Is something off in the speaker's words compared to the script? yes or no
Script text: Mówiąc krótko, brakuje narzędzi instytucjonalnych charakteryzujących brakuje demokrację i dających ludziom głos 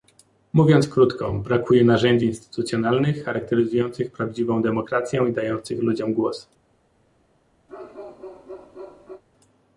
yes